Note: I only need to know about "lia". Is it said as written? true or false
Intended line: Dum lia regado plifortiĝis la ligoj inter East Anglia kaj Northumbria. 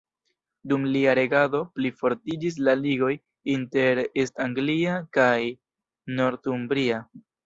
true